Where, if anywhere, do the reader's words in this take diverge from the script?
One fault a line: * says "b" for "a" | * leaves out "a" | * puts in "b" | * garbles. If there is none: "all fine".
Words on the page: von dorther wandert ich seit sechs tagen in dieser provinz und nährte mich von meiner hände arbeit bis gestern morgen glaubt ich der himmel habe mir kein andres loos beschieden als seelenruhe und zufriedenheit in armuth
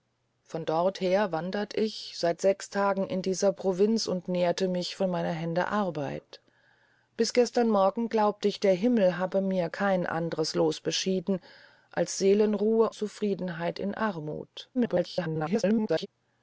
* leaves out "und"
* garbles